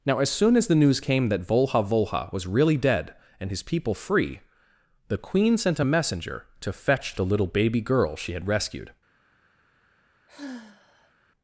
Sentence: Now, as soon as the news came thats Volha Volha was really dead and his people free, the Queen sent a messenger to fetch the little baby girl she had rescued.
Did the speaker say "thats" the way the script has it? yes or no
no